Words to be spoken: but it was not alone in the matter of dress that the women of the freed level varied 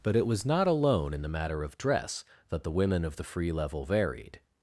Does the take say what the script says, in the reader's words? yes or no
no